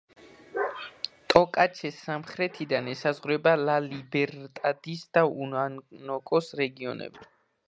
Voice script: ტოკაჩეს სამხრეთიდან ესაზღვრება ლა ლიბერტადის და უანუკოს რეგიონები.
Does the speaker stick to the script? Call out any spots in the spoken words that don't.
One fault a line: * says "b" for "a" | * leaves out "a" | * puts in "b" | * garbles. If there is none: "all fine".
all fine